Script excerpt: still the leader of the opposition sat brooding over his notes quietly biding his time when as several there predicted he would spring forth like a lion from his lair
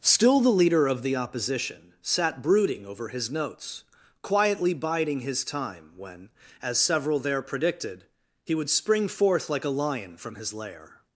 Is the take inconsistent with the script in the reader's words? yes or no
no